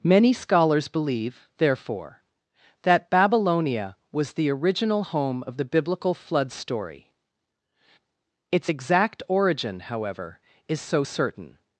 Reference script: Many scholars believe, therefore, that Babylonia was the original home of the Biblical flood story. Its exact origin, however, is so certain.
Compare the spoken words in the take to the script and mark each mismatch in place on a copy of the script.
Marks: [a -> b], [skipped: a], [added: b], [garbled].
Many scholars believe, therefore, that Babylonia was the original home of the Biblical flood story. Its exact origin, however, is so certain.